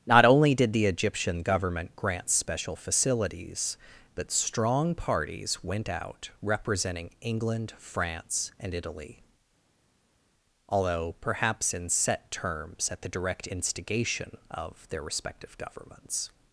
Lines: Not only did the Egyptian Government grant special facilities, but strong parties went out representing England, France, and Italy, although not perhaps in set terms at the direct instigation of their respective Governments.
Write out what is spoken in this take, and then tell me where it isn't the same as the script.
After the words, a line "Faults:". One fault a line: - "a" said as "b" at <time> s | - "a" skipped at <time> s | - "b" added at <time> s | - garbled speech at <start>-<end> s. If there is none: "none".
Not only did the Egyptian Government grant special facilities, but strong parties went out representing England, France, and Italy, although perhaps in set terms at the direct instigation of their respective Governments.
Faults:
- "not" skipped at 11.1 s